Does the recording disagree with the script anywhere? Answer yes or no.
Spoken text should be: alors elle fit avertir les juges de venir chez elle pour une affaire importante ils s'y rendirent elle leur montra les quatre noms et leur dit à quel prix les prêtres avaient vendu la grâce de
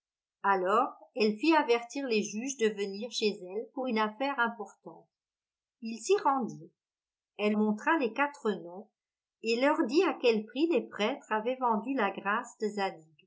yes